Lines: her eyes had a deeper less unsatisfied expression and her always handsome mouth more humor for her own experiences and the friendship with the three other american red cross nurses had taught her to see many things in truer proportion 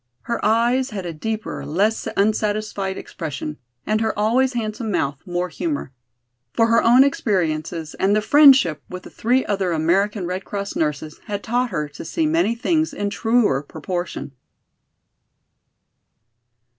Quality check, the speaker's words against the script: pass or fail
pass